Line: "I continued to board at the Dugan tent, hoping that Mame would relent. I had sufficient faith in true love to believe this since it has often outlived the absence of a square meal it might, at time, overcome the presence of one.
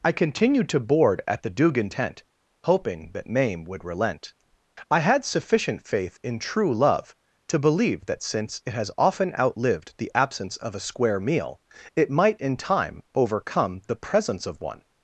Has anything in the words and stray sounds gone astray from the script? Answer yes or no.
yes